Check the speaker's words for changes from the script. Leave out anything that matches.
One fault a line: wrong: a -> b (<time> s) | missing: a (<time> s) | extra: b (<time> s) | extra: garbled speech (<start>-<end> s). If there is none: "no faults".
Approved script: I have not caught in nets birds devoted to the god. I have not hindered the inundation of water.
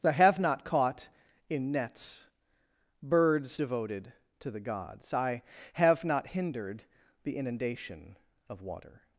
wrong: god -> gods (4.6 s)